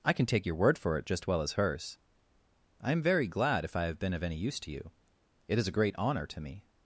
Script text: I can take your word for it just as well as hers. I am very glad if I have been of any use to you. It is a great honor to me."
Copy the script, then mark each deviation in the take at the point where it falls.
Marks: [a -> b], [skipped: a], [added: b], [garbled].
I can take your word for it just [skipped: as] well as hers. I am very glad if I have been of any use to you. It is a great honor to me."